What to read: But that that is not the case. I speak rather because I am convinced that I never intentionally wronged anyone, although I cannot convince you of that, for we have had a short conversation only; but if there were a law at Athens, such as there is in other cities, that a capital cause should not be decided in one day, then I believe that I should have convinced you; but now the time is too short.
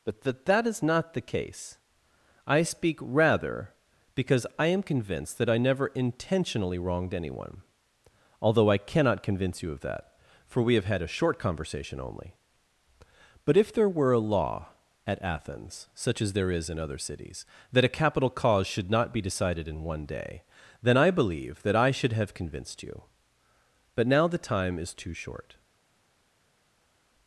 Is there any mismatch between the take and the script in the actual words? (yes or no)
no